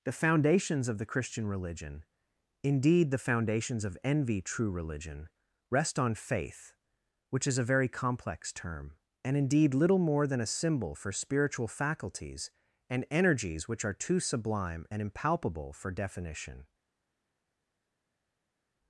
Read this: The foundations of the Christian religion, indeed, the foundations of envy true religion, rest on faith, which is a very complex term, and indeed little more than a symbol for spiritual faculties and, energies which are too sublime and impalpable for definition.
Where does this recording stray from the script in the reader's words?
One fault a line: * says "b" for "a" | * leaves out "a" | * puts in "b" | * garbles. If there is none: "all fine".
all fine